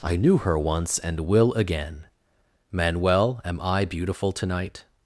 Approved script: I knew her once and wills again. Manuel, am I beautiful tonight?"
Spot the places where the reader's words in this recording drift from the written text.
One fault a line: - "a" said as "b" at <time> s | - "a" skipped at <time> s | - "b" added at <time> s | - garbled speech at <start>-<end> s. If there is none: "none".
- "wills" said as "will" at 1.2 s